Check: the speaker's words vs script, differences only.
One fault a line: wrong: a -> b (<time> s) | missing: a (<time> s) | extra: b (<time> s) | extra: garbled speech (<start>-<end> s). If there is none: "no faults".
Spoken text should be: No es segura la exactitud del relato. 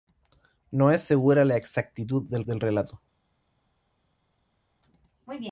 extra: del (2.4 s)